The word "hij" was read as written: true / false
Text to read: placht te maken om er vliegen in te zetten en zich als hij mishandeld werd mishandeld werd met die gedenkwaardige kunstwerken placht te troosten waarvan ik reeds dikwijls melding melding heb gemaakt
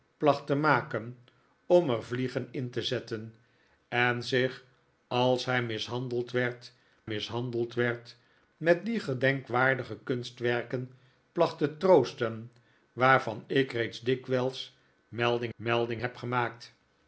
true